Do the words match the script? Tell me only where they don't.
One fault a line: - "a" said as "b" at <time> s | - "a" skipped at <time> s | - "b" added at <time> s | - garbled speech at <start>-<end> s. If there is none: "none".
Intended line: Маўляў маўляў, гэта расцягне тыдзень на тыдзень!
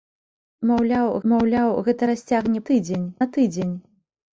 none